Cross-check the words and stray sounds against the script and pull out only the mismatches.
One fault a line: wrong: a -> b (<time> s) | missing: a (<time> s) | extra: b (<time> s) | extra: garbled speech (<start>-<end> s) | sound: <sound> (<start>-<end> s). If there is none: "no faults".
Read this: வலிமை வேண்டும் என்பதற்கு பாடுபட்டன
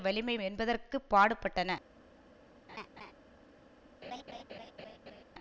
missing: வேண்டும் (0.3 s)
sound: laugh (2.7-3.1 s)
sound: laugh (4.0-5.2 s)